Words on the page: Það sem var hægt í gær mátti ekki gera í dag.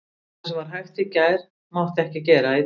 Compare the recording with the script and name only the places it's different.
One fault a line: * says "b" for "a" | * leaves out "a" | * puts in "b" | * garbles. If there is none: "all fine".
all fine